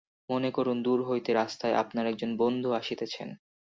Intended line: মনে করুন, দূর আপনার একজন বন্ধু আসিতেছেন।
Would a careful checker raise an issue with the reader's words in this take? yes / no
yes